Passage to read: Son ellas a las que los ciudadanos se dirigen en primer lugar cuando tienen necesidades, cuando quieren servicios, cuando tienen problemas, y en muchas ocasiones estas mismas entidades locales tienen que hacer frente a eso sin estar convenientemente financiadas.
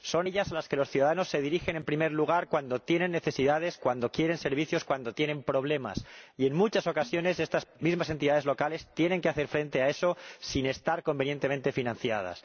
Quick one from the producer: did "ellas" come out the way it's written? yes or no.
yes